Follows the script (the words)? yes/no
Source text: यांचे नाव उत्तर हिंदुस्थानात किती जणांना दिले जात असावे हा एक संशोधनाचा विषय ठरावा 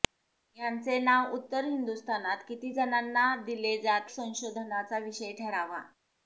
no